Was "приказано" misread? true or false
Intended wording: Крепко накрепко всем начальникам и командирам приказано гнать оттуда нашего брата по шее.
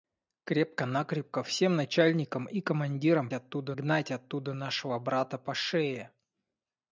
true